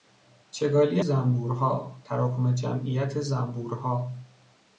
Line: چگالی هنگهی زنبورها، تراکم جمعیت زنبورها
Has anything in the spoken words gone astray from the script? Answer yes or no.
yes